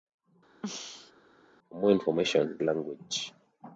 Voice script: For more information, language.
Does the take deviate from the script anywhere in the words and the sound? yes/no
yes